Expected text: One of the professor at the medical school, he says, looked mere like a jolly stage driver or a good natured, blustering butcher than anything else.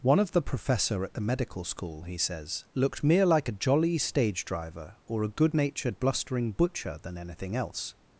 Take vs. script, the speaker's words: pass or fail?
pass